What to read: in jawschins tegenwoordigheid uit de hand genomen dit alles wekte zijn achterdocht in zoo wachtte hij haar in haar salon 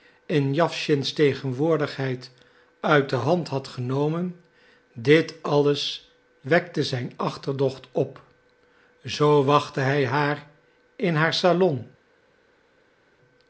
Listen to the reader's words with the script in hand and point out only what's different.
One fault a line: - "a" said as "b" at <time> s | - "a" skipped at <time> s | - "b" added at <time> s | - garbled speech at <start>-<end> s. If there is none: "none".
- "had" added at 3.5 s
- "in" said as "op" at 7.9 s